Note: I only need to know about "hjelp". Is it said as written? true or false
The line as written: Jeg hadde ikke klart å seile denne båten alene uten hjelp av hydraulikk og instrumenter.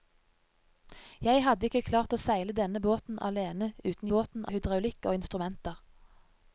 false